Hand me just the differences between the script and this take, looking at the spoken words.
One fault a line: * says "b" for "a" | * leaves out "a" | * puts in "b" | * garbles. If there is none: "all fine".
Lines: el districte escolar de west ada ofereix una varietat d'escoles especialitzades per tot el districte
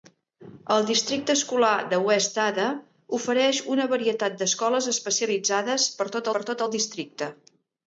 * puts in "per tot"